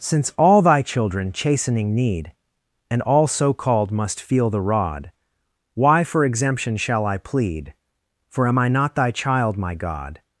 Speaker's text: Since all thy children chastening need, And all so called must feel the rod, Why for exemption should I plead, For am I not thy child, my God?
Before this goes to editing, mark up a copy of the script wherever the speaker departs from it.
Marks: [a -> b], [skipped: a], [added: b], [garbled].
Since all thy children chastening need, And all so called must feel the rod, Why for exemption [should -> shall] I plead, For am I not thy child, my God?